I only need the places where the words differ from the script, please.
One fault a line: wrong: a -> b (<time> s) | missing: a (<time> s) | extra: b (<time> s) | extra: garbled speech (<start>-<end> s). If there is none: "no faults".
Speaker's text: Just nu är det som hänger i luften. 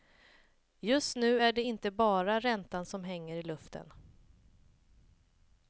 extra: inte bara räntan (1.6 s)